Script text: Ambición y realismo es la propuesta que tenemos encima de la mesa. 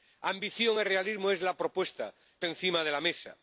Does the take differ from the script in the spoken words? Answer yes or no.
yes